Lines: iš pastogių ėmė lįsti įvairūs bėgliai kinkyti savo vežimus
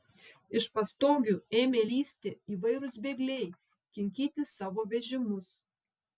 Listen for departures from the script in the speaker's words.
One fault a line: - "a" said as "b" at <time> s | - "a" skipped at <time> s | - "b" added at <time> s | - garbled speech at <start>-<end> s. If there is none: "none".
none